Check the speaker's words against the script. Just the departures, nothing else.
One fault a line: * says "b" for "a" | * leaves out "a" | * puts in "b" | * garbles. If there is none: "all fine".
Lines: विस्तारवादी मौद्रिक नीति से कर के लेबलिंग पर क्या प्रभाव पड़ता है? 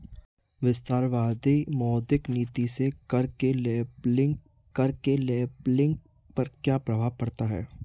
* puts in "कर के लेबलिंग"